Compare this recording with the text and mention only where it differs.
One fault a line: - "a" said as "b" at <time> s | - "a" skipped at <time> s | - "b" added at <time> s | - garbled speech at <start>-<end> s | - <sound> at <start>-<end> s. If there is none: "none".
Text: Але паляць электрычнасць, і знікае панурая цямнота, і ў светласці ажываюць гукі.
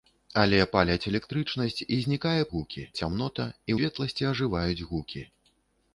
- "панурая" said as "гукі" at 2.6 s
- "ў" skipped at 3.7 s